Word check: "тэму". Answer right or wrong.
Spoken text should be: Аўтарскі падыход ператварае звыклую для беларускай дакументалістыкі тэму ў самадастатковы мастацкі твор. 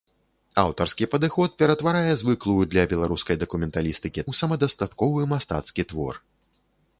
wrong